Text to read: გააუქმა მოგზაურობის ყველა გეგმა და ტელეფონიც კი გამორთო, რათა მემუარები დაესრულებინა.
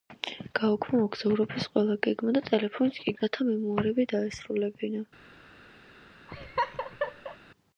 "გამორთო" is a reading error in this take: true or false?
true